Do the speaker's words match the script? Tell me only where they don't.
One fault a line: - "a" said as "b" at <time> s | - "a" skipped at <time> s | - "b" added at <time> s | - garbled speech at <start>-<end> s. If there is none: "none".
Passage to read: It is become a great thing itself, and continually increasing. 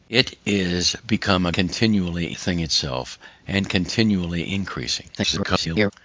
- "great" said as "continually" at 1.5 s
- garbled speech at 5.2-5.9 s